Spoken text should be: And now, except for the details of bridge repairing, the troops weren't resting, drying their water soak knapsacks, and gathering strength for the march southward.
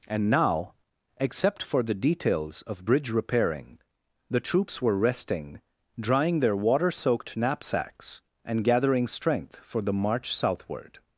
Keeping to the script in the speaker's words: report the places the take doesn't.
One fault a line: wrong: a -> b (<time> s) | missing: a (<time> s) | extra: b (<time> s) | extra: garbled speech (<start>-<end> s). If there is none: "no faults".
wrong: weren't -> were (4.8 s)
wrong: soak -> soaked (6.9 s)